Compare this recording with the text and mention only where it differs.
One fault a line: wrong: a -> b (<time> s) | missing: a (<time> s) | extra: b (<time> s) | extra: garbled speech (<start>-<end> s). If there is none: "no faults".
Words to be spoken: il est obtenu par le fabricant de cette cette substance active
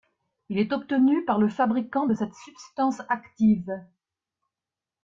missing: cette (2.3 s)